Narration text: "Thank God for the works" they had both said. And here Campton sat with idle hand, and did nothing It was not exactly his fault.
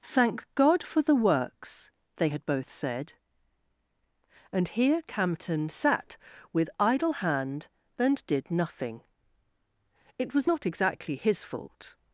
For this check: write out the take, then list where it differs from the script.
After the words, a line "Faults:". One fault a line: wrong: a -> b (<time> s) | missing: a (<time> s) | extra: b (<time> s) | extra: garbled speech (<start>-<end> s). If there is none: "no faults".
"Thank God for the works" they had both said. And here Campton sat with idle hand, and did nothing It was not exactly his fault.
Faults:
no faults